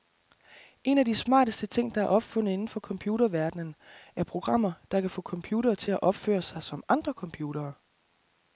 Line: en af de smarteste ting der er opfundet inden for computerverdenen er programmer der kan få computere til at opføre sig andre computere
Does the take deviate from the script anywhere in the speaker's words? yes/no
yes